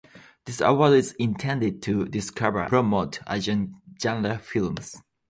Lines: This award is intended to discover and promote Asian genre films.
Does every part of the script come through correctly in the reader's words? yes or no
no